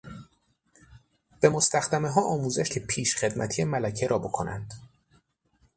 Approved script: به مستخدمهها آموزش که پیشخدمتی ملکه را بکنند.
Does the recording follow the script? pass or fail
pass